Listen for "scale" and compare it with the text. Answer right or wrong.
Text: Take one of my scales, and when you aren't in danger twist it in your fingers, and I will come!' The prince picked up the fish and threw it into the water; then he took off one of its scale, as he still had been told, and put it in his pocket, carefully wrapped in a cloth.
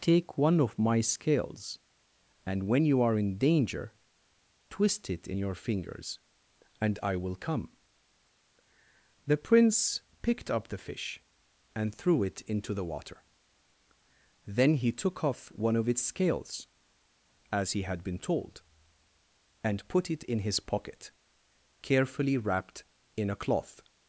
wrong